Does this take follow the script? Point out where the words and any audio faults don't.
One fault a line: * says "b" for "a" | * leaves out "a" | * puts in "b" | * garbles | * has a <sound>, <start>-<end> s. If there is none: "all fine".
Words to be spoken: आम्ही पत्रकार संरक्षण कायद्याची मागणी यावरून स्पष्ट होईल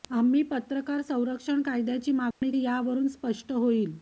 * has a dropout, 2.3-2.4 s